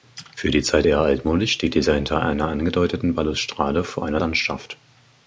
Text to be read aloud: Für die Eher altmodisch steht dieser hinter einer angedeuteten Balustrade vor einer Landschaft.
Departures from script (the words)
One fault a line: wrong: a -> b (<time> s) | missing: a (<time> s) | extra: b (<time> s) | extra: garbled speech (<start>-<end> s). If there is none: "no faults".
extra: Zeit (0.6 s)